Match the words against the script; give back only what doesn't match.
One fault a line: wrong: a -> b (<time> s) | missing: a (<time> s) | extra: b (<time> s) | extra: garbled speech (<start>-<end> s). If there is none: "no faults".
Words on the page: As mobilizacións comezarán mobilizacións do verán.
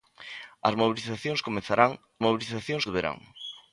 no faults